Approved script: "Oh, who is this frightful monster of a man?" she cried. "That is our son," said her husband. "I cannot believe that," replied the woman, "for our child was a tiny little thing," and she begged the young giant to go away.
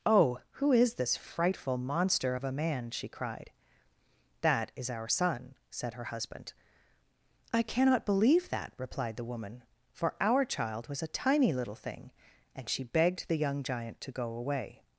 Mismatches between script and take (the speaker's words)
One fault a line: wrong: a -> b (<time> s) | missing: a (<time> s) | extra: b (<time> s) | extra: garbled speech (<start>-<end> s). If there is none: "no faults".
no faults